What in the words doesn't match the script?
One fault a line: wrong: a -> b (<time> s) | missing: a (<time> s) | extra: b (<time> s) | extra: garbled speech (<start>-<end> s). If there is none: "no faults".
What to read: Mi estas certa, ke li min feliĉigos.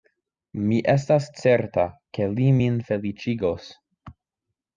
no faults